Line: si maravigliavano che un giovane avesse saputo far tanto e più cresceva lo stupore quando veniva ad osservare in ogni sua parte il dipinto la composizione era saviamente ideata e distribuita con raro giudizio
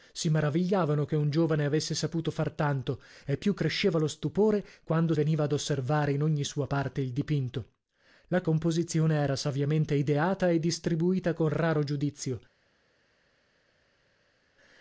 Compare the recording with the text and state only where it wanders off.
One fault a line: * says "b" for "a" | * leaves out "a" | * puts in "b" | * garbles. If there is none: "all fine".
all fine